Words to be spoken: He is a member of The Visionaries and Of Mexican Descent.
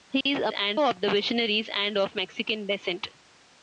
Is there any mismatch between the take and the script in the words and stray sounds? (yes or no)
yes